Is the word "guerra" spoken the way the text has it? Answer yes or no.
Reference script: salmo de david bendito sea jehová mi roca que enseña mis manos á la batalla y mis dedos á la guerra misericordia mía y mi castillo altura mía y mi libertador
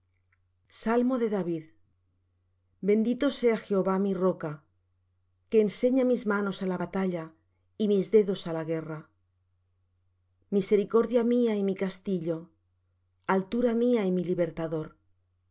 yes